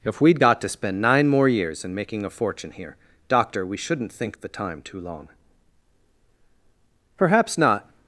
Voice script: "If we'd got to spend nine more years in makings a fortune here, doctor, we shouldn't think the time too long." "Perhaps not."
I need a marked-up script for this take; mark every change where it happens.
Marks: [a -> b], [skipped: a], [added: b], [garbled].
"If we'd got to spend nine more years in [makings -> making] a fortune here, doctor, we shouldn't think the time too long." "Perhaps not."